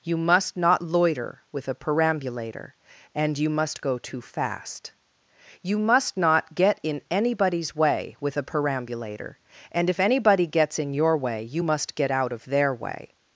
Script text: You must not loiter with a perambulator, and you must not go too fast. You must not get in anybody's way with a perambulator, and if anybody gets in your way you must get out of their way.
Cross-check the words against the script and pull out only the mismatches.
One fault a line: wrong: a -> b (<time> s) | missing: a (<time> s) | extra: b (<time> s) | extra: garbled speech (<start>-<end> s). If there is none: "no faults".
missing: not (3.8 s)